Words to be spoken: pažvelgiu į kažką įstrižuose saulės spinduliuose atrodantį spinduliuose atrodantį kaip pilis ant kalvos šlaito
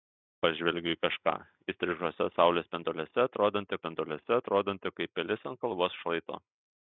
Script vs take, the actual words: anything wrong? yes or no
no